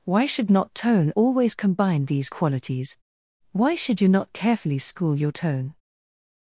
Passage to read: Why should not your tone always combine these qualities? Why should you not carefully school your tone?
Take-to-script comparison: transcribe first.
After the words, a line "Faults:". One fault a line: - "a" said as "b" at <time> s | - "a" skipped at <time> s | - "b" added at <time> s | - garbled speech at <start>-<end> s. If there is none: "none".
Why should not tone always combine these qualities? Why should you not carefully school your tone?
Faults:
- "your" skipped at 0.7 s